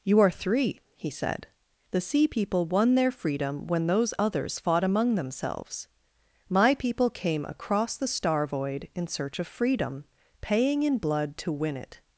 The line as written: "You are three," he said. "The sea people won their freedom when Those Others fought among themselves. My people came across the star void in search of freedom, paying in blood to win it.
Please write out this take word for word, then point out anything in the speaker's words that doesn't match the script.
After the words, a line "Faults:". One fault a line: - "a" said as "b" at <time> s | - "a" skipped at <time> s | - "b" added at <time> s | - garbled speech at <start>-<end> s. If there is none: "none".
"You are three," he said. "The sea people won their freedom when Those Others fought among themselves. My people came across the star void in search of freedom, paying in blood to win it.
Faults:
none